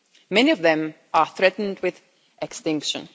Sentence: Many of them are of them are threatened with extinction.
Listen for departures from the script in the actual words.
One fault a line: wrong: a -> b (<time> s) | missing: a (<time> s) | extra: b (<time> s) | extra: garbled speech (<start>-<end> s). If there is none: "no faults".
missing: of them are (1.3 s)